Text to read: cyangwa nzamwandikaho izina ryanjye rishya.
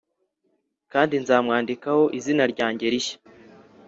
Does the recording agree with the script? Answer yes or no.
no